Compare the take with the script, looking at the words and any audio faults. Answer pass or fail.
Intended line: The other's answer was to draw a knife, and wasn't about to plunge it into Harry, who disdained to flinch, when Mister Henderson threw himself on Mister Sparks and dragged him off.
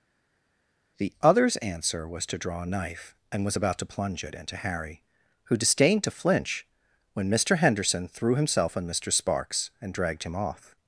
fail